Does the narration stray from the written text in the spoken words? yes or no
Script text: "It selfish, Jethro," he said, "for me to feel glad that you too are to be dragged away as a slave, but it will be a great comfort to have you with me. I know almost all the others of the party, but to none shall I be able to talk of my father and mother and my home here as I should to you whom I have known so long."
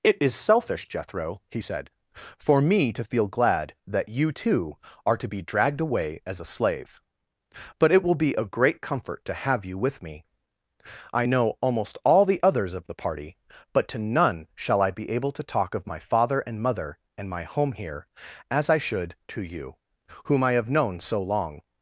yes